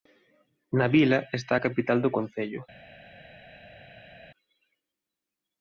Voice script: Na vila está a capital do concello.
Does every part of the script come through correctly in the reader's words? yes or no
yes